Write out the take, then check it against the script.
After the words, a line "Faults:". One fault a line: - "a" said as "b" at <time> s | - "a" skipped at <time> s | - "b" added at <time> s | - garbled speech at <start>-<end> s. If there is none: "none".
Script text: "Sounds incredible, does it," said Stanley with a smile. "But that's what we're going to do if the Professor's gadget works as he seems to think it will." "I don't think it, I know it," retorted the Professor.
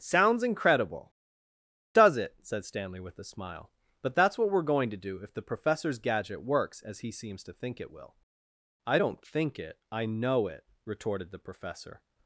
"Sounds incredible, does it," said Stanley with a smile. "But that's what we're going to do if the Professor's gadget works as he seems to think it will." "I don't think it, I know it," retorted the Professor.
Faults:
none